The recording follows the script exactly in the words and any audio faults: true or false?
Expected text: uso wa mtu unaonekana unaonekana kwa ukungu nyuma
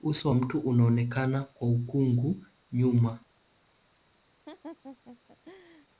false